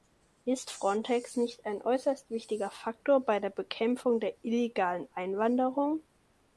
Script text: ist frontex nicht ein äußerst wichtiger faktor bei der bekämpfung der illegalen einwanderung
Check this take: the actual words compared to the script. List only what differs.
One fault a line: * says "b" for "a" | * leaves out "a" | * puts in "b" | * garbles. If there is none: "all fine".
all fine